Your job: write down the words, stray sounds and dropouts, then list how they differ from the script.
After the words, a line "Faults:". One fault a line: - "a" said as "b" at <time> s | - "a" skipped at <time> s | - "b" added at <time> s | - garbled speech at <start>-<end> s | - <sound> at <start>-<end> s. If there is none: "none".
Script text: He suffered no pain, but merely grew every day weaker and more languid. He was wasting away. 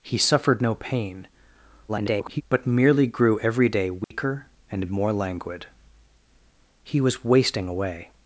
He suffered no pain, [garbled] but merely grew every day weaker and more languid. He was wasting away.
Faults:
- garbled speech at 1.9-2.4 s
- dropout at 4.0-4.1 s